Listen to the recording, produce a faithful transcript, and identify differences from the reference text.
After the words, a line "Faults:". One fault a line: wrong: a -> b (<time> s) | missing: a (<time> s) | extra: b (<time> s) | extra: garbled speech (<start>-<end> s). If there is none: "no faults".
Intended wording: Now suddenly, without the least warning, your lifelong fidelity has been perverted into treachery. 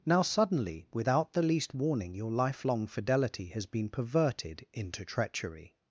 Now suddenly, without the least warning, your lifelong fidelity has been perverted into treachery.
Faults:
no faults